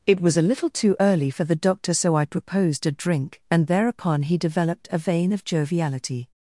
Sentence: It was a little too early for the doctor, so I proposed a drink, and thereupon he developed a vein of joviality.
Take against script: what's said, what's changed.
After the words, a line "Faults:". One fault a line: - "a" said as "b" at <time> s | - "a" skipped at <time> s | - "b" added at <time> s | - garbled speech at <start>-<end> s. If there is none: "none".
It was a little too early for the doctor, so I proposed a drink, and thereupon he developed a vein of joviality.
Faults:
none